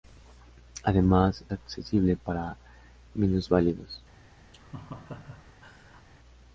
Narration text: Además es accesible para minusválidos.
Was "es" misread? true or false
true